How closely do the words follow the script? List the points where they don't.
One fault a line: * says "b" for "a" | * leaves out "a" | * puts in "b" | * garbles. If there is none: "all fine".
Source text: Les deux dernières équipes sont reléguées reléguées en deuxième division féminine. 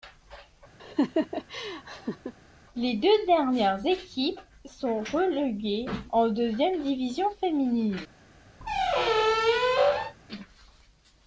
* leaves out "reléguées"